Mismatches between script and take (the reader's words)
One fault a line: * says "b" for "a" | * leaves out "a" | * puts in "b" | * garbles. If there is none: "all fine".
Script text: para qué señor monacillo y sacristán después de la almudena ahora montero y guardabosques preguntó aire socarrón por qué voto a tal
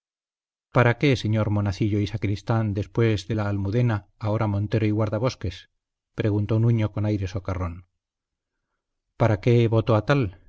* puts in "nuño con"
* says "para" for "por"